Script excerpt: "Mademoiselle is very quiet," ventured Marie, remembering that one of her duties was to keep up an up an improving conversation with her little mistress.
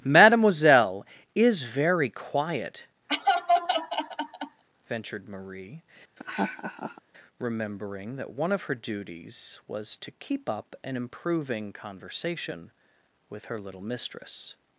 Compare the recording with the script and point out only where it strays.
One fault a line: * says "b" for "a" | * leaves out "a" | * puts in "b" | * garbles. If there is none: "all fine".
* leaves out "up an"